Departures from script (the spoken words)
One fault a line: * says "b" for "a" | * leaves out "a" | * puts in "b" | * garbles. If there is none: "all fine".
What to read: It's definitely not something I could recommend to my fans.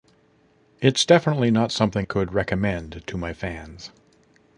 * leaves out "I"